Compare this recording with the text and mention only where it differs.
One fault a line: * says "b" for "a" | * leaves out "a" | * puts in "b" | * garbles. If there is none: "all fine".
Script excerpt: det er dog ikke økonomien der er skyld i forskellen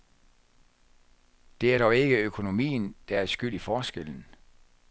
all fine